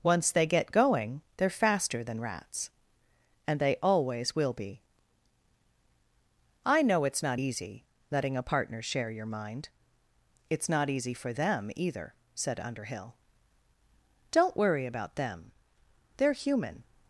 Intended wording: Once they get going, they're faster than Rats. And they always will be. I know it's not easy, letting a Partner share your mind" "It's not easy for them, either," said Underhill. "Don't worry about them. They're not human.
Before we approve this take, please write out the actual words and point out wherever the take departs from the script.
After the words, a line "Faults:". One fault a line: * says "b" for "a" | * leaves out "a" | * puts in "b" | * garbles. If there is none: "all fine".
Once they get going, they're faster than Rats. And they always will be. I know it's not easy, letting a Partner share your mind" "It's not easy for them, either," said Underhill. "Don't worry about them. They're human.
Faults:
* leaves out "not"